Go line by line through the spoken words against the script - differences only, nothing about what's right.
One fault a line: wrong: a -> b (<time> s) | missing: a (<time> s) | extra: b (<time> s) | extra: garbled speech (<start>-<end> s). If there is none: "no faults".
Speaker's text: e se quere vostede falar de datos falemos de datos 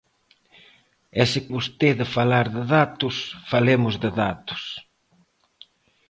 missing: quere (1.4 s)